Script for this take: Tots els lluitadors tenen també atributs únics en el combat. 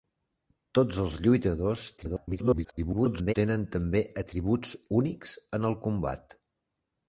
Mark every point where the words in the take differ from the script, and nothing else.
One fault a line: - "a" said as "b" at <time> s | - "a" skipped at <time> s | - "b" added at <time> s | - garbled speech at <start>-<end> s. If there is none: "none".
- garbled speech at 2.0-3.3 s